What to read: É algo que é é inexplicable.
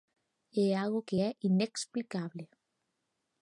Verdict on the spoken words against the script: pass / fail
fail